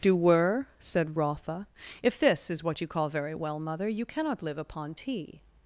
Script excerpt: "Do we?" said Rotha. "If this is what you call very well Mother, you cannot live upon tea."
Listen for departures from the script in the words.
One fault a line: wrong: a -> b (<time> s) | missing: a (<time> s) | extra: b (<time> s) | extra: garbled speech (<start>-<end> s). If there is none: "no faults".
wrong: we -> were (0.1 s)